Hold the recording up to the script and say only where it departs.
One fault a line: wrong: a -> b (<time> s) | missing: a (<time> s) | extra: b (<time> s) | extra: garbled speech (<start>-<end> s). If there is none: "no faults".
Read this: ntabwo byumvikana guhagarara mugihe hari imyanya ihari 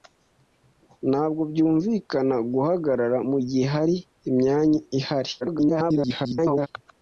extra: garbled speech (5.4-6.7 s)